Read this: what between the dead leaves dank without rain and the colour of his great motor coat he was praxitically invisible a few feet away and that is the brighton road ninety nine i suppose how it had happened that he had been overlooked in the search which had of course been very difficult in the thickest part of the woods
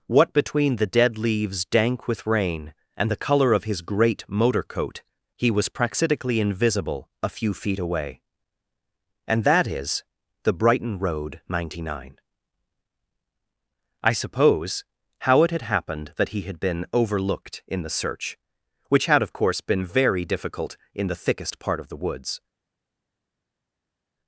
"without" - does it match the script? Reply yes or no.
no